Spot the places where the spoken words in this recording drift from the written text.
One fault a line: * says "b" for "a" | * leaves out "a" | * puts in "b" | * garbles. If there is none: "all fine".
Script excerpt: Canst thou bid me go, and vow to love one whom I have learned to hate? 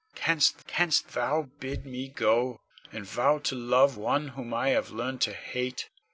* puts in "canst"